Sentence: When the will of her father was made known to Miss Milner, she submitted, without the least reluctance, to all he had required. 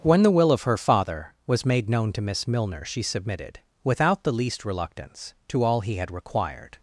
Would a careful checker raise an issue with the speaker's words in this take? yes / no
no